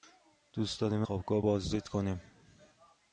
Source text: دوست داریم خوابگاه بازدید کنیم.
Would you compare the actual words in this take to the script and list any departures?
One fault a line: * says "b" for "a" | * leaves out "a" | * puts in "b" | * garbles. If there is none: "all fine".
all fine